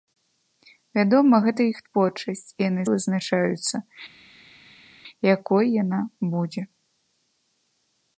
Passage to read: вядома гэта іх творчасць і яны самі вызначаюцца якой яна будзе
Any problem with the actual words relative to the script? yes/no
yes